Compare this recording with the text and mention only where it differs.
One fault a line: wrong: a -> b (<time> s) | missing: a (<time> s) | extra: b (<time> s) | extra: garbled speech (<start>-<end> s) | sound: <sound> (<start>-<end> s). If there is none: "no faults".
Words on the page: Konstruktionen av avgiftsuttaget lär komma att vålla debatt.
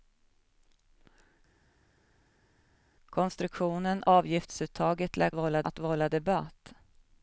missing: av (4.0 s)
wrong: komma -> vålla (5.3 s)